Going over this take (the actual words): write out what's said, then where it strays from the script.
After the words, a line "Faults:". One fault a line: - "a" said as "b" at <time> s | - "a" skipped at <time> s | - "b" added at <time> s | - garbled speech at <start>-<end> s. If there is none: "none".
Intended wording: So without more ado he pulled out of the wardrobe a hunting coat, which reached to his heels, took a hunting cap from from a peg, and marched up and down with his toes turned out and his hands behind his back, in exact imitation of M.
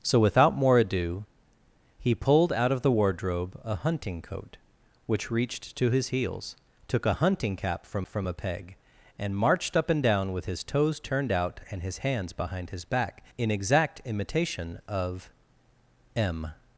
So without more ado he pulled out of the wardrobe a hunting coat, which reached to his heels, took a hunting cap from from a peg, and marched up and down with his toes turned out and his hands behind his back, in exact imitation of M.
Faults:
none